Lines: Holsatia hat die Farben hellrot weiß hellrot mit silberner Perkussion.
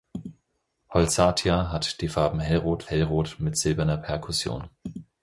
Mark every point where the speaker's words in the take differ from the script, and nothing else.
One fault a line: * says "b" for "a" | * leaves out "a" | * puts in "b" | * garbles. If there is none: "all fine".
* leaves out "weiß"